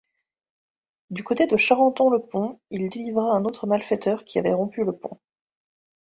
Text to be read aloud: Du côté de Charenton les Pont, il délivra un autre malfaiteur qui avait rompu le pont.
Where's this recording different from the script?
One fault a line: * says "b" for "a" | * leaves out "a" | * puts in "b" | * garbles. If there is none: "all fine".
* says "le" for "les"